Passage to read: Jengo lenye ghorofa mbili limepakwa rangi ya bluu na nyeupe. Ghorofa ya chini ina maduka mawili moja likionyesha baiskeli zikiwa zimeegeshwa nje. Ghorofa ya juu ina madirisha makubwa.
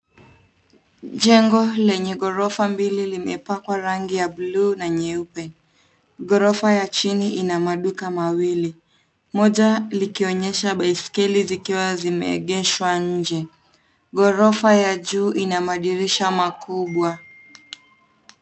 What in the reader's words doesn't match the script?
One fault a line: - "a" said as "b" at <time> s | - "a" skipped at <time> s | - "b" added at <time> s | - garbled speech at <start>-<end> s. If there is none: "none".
none